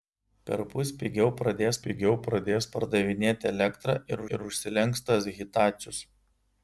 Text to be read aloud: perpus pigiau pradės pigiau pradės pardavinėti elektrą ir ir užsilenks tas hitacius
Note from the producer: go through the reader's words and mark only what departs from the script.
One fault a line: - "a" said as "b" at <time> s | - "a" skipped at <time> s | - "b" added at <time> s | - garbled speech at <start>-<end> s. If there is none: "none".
none